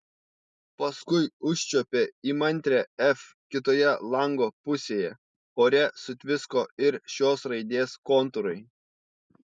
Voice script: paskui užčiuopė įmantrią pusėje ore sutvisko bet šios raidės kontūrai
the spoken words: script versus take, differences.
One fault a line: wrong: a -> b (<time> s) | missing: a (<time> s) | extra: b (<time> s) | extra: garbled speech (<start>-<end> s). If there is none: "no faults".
extra: f kitoje lango (3.1 s)
wrong: bet -> ir (6.9 s)